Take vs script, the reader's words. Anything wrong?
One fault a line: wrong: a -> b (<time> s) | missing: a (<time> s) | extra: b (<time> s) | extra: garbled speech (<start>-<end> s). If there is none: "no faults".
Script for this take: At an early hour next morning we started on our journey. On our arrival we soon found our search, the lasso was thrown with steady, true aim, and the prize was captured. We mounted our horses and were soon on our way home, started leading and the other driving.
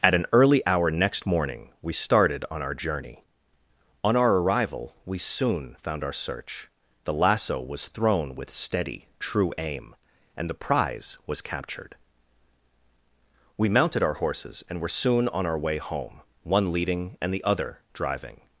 wrong: started -> one (16.4 s)